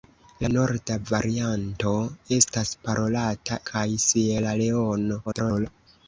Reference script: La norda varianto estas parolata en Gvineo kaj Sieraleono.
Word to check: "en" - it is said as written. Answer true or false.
false